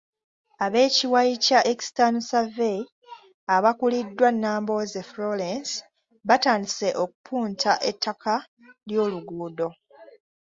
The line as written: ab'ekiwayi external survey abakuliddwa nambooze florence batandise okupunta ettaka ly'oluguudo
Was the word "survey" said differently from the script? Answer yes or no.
no